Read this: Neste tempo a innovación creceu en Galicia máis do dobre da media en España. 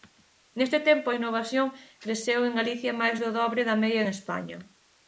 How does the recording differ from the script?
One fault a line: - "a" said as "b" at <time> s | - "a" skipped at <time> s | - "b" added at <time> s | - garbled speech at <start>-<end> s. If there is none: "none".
none